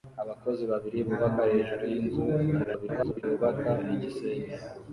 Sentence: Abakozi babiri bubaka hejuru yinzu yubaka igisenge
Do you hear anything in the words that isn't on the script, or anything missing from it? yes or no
yes